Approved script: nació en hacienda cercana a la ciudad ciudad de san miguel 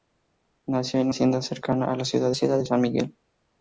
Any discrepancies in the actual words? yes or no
no